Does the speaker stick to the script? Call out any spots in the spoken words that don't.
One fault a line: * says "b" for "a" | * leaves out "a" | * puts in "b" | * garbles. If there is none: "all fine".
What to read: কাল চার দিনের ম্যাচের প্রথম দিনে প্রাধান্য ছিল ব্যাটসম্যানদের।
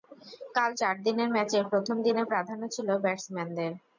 all fine